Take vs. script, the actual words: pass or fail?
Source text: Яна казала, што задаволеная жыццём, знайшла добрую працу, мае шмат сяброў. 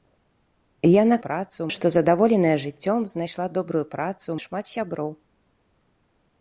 fail